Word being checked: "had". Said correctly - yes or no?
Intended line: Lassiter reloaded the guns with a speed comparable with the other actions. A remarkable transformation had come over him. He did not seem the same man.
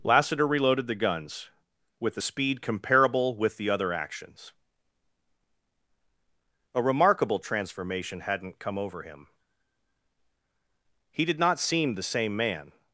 no